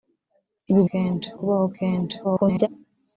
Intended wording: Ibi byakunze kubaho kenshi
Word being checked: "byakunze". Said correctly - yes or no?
no